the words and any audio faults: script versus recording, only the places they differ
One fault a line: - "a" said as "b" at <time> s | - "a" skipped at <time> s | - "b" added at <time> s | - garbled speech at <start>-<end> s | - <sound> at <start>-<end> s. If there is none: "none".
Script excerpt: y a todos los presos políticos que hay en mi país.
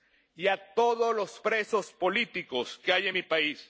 none